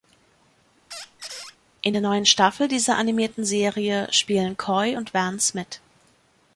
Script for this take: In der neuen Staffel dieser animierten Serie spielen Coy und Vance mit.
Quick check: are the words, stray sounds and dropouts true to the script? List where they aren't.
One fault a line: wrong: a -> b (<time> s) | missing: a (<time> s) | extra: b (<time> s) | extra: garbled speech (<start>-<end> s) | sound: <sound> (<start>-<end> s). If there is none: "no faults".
sound: squeak (0.9-1.6 s)